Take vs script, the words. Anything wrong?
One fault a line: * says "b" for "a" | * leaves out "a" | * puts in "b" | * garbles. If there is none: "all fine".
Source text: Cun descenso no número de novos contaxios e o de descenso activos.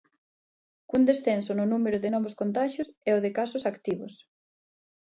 * says "casos" for "descenso"